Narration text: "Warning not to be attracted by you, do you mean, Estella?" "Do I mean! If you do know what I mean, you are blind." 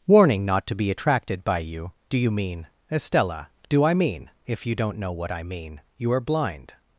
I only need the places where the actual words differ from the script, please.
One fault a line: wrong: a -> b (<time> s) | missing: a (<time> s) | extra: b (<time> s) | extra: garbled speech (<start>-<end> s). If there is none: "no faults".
wrong: do -> don't (4.8 s)